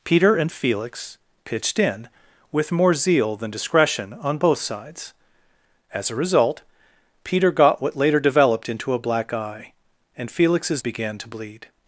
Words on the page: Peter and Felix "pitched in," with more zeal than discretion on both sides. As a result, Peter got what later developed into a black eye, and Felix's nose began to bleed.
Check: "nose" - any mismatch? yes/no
yes